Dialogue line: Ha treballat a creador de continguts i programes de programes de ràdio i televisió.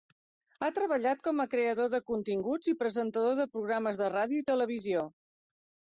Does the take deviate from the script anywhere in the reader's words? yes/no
yes